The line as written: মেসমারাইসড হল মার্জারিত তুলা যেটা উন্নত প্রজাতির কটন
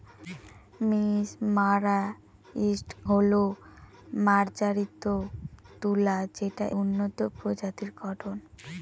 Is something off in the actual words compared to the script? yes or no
no